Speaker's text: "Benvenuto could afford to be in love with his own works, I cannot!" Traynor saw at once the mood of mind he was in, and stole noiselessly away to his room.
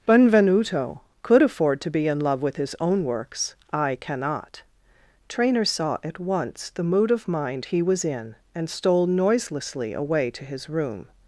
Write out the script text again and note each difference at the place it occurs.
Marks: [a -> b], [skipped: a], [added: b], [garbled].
"Benvenuto could afford to be in love with his own works, I cannot!" Traynor saw at once the mood of mind he was in, and stole noiselessly away to his room.